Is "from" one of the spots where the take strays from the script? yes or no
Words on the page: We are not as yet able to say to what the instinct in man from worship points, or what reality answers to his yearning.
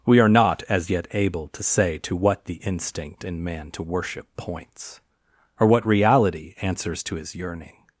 yes